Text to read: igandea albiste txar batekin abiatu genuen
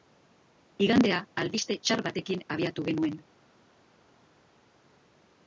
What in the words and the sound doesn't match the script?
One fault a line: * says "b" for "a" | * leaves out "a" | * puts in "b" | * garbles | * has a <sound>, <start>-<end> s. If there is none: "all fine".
all fine